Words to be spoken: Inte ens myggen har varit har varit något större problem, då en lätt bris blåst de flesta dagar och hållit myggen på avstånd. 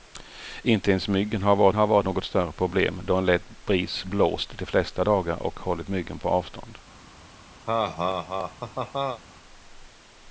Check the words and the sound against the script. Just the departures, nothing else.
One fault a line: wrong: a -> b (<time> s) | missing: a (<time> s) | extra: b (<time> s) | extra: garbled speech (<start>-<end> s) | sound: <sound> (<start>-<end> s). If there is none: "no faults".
sound: laugh (7.7-9.2 s)